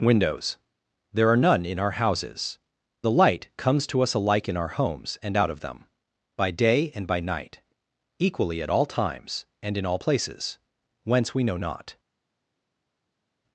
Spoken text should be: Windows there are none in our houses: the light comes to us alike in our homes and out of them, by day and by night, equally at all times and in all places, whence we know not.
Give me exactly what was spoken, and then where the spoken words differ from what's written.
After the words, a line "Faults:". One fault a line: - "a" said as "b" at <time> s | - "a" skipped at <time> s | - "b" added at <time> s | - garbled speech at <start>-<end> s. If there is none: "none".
Windows there are none in our houses: the light comes to us alike in our homes and out of them, by day and by night, equally at all times and in all places, whence we know not.
Faults:
none